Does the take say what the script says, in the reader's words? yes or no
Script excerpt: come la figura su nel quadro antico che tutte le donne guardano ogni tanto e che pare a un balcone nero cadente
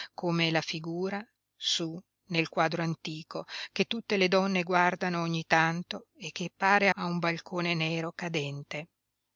yes